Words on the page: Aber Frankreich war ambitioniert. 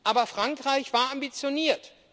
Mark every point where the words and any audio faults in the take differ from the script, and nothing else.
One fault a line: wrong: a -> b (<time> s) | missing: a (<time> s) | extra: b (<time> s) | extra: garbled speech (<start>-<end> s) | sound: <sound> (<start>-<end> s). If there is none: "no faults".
no faults